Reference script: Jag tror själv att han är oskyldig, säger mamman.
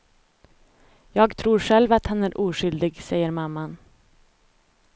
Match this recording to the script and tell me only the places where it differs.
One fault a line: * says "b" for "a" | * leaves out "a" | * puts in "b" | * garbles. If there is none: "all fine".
all fine